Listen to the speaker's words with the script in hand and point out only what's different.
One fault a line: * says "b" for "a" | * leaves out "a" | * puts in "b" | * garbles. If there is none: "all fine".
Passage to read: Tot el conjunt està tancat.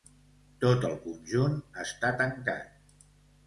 all fine